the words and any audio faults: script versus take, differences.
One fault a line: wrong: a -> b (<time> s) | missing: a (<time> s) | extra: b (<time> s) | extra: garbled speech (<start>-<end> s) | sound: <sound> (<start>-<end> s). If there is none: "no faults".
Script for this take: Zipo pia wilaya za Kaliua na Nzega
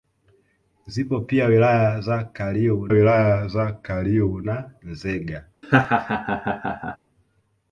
extra: wilaya za Kaliua (2.9 s)
sound: laugh (5.6-7.0 s)